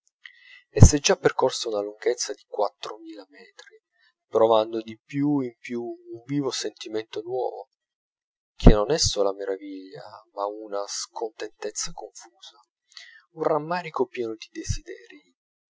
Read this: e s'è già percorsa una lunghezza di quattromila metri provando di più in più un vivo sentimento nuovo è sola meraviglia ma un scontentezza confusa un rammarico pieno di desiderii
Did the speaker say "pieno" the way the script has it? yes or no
yes